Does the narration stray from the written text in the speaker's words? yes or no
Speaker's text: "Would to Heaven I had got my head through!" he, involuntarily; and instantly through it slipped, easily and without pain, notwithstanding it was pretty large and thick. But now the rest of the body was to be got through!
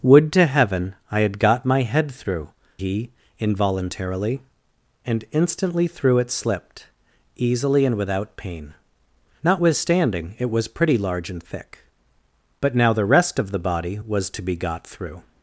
no